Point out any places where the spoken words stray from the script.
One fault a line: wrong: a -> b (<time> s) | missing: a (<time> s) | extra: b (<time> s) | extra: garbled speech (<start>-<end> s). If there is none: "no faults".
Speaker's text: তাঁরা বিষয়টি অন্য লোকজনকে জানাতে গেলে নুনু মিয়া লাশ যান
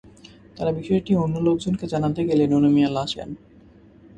no faults